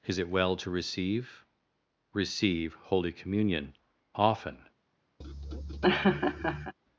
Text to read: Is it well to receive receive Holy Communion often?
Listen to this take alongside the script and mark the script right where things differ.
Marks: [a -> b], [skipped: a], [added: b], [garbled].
Is it well to receive receive Holy Communion often?